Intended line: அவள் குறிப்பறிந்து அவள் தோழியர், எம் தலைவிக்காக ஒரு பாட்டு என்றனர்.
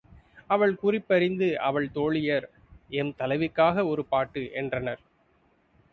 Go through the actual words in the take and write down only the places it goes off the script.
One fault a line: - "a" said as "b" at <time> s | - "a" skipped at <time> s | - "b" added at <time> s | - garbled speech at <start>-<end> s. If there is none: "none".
none